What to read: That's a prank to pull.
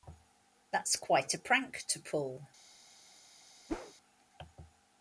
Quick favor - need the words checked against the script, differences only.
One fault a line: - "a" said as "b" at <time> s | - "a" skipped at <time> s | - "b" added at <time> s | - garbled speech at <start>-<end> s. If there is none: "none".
- "quite" added at 0.9 s